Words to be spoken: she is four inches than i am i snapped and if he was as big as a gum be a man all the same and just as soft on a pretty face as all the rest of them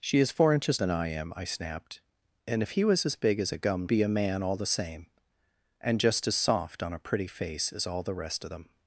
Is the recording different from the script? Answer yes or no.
no